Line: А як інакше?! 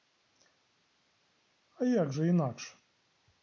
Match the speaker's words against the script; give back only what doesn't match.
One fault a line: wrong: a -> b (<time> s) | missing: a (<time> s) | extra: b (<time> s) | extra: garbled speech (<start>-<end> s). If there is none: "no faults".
extra: же (2.1 s)